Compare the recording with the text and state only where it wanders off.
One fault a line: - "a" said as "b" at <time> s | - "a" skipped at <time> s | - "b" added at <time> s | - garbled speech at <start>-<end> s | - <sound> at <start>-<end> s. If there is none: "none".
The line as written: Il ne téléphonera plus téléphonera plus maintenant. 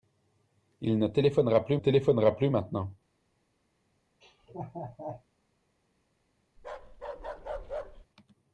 - laugh at 4.2-5.2 s
- bark at 6.6-8.1 s